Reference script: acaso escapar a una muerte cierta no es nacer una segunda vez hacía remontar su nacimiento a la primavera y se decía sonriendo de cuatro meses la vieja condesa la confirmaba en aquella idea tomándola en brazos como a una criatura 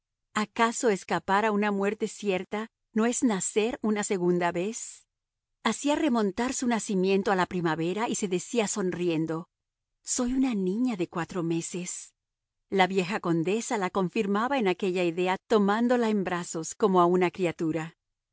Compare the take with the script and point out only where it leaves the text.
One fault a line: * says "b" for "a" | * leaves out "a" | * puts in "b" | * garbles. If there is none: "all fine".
* puts in "soy una niña"